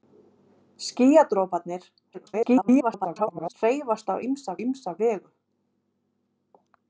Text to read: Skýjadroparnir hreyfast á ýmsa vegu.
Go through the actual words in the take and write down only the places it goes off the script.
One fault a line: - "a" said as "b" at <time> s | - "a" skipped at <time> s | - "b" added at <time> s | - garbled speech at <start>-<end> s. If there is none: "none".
- garbled speech at 2.1-3.5 s
- "ýmsa" added at 4.7 s